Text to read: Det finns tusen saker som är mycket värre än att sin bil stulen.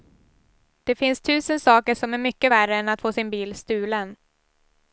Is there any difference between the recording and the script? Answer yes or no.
yes